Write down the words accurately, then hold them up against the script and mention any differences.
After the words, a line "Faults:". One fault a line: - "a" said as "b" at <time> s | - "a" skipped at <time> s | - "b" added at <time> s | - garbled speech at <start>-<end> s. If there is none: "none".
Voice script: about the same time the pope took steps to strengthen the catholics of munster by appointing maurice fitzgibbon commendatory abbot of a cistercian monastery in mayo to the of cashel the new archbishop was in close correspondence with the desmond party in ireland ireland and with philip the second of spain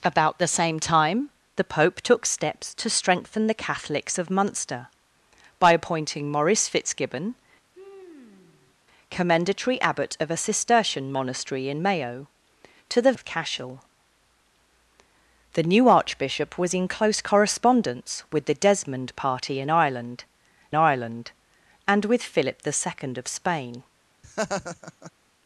about the same time the pope took steps to strengthen the catholics of munster by appointing maurice fitzgibbon commendatory abbot of a cistercian monastery in mayo to the of cashel the new archbishop was in close correspondence with the desmond party in ireland ireland and with philip the second of spain
Faults:
none